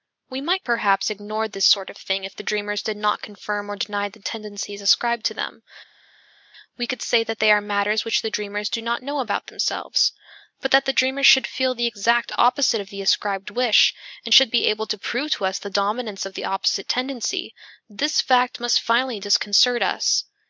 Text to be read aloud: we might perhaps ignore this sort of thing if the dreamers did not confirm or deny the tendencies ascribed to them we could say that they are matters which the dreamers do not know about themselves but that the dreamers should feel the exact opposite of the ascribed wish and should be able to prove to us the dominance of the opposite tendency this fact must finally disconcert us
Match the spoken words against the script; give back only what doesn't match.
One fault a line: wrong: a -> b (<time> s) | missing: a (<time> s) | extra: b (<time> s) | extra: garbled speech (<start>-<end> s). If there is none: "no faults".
no faults